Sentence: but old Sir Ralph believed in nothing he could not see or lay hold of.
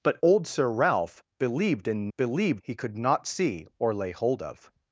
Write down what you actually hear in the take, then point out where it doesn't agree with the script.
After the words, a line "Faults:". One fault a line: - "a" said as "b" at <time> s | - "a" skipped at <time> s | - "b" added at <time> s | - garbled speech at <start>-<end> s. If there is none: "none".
but old Sir Ralph believed in believed he could not see or lay hold of.
Faults:
- "nothing" said as "believed" at 2.2 s